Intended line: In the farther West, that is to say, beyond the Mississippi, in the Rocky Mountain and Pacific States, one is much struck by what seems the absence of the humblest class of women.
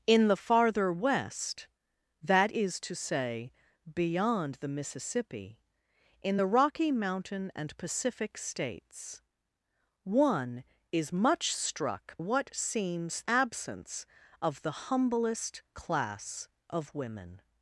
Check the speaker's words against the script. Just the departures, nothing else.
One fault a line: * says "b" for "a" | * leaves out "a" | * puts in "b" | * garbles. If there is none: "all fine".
* leaves out "by"
* leaves out "the"